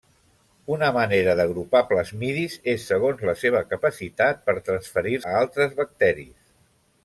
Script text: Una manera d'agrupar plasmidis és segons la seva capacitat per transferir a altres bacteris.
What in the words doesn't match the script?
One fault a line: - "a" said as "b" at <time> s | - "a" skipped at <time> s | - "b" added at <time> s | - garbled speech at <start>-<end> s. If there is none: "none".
none